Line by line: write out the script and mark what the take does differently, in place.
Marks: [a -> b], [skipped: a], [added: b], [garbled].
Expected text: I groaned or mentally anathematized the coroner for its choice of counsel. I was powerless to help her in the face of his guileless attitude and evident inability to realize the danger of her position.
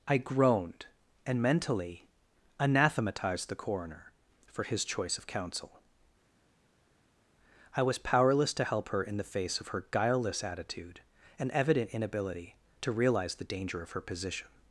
I groaned [or -> and] mentally anathematized the coroner for [its -> his] choice of counsel. I was powerless to help her in the face of [his -> her] guileless attitude and evident inability to realize the danger of her position.